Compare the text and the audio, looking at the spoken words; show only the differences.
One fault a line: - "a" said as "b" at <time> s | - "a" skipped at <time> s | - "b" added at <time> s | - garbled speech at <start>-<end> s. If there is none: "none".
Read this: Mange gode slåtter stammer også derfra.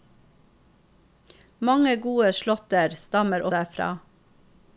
- "også" skipped at 3.5 s